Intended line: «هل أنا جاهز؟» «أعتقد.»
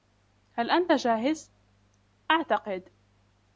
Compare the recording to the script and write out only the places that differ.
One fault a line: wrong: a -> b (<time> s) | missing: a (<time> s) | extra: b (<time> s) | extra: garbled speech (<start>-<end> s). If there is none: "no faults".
wrong: أنا -> أنت (0.7 s)